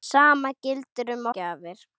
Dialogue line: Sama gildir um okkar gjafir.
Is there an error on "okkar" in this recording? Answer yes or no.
yes